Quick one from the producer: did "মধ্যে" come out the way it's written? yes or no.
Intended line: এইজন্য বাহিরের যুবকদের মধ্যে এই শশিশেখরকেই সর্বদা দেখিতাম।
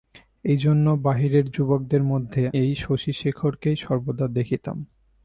yes